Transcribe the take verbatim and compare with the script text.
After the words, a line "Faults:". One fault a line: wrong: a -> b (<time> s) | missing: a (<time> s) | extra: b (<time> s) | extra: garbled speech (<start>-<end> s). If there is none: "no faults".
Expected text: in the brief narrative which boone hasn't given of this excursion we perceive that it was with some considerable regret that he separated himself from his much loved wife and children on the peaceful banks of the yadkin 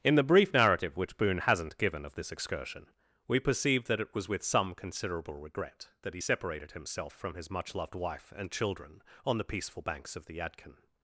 in the brief narrative which boone hasn't given of this excursion we perceive that it was with some considerable regret that he separated himself from his much loved wife and children on the peaceful banks of the yadkin
Faults:
no faults